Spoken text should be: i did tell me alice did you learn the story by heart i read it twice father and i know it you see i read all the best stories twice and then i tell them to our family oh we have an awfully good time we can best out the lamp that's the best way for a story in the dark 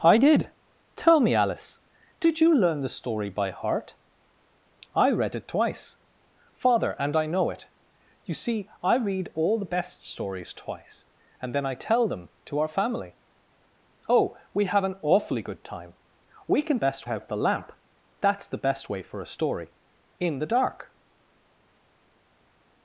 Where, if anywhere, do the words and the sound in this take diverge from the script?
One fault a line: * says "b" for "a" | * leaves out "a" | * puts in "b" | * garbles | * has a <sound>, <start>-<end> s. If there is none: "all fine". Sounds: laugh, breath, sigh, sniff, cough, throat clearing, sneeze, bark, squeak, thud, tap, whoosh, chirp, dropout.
all fine